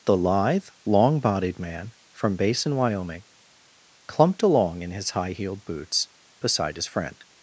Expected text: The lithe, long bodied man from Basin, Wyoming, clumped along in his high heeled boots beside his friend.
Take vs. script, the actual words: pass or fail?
pass